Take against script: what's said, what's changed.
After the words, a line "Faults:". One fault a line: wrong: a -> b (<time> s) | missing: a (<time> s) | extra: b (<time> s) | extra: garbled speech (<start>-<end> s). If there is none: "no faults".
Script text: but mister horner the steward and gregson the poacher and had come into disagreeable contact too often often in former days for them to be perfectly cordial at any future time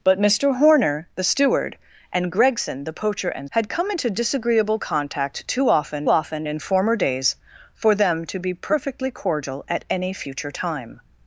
but mister horner the steward and gregson the poacher and had come into disagreeable contact too often often in former days for them to be perfectly cordial at any future time
Faults:
no faults